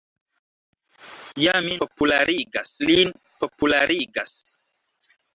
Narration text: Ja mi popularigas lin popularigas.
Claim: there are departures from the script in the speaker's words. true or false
false